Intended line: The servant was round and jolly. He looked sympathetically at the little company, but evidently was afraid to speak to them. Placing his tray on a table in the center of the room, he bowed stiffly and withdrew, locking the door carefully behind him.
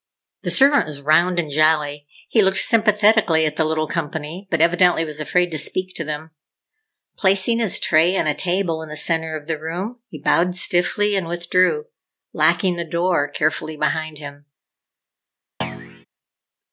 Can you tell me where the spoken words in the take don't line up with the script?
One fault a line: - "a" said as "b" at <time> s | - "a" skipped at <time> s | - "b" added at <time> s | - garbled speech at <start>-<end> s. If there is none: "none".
none